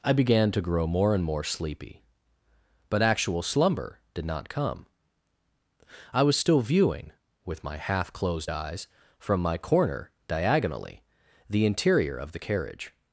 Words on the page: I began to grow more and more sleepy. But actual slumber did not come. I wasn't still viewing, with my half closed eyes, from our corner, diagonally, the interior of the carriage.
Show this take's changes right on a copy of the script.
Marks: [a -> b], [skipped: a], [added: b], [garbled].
I began to grow more and more sleepy. But actual slumber did not come. I [wasn't -> was] still viewing, with my half closed eyes, from [our -> my] corner, diagonally, the interior of the carriage.